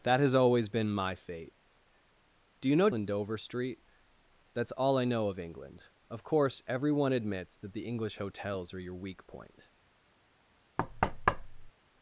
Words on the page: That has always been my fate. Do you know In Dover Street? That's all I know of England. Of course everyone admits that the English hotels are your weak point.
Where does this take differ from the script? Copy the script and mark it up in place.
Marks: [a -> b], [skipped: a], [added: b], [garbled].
That has always been my fate. Do you know In Dover Street? That's all I know of England. Of course everyone admits that the English hotels are your weak point.